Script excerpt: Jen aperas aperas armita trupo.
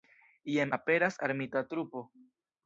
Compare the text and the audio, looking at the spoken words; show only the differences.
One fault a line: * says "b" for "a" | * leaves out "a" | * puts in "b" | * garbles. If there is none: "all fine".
* leaves out "aperas"